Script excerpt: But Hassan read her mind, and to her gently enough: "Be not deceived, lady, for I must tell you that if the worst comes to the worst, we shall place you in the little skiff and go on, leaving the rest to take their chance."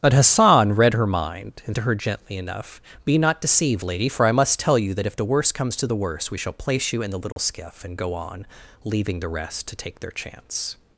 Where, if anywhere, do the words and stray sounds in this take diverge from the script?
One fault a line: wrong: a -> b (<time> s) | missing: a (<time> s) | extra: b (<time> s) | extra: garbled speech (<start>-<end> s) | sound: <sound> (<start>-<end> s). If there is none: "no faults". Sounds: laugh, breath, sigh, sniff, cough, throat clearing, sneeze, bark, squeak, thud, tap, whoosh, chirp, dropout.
sound: dropout (7.3-7.4 s)